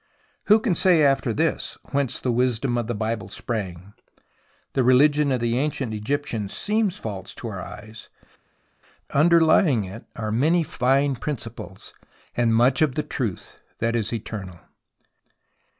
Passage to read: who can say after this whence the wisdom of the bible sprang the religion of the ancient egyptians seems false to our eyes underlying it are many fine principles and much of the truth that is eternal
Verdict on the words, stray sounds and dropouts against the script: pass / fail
pass